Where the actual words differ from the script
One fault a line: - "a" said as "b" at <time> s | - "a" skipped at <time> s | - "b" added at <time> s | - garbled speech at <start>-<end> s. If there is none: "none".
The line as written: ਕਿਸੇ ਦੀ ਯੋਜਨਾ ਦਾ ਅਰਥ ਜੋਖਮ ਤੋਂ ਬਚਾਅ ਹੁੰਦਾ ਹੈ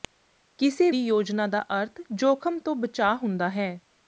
none